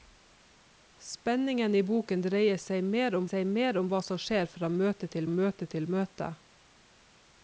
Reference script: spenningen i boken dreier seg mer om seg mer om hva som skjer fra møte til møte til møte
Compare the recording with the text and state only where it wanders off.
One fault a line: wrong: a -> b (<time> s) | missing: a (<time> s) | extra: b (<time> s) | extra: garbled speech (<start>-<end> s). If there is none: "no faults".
no faults